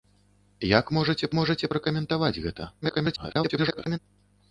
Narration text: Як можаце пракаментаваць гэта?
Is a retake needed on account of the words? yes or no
yes